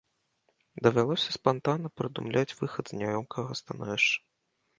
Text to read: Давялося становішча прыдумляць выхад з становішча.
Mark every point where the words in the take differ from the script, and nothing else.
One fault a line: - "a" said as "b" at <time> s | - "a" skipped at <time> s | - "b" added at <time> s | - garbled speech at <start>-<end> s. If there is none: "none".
- "становішча" said as "спантанна" at 1.4 s
- "няёмкага" added at 3.0 s